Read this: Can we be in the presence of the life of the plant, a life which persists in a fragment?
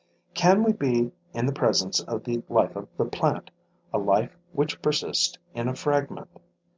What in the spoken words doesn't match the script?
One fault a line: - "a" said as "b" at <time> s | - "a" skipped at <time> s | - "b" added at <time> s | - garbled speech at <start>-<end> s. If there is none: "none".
none